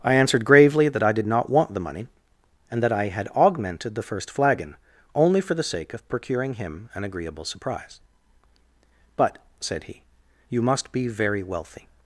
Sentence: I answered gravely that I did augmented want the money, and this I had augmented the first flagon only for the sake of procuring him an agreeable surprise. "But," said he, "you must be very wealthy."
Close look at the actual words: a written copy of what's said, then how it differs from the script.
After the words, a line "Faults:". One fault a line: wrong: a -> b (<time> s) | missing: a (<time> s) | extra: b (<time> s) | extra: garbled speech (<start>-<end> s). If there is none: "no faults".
I answered gravely that I did not want the money, and that I had augmented the first flagon only for the sake of procuring him an agreeable surprise. "But," said he, "you must be very wealthy."
Faults:
wrong: augmented -> not (1.3 s)
wrong: this -> that (2.8 s)